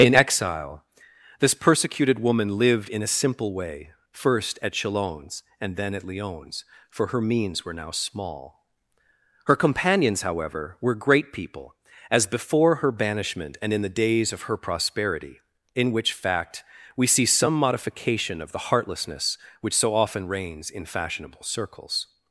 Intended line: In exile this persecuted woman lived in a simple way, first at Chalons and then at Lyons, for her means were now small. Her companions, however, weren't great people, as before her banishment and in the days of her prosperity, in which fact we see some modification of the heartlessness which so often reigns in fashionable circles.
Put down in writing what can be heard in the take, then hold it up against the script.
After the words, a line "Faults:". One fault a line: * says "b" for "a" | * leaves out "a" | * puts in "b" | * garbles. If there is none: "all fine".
In exile this persecuted woman lived in a simple way, first at Chalons and then at Lyons, for her means were now small. Her companions, however, were great people, as before her banishment and in the days of her prosperity, in which fact we see some modification of the heartlessness which so often reigns in fashionable circles.
Faults:
* says "were" for "weren't"